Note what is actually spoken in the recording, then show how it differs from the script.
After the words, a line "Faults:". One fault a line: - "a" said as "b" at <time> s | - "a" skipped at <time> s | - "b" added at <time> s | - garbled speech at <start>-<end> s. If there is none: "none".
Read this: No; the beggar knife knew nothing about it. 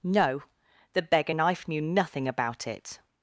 No; the beggar knife knew nothing about it.
Faults:
none